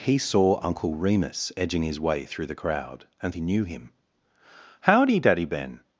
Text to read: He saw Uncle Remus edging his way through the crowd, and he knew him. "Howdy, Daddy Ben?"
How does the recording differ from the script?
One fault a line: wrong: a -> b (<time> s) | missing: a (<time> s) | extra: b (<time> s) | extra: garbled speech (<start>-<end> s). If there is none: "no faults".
no faults